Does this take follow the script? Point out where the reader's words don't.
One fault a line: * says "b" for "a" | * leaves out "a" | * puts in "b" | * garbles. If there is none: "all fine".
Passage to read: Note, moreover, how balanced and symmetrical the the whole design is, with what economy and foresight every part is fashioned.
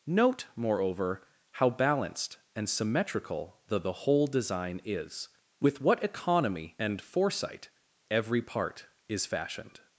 all fine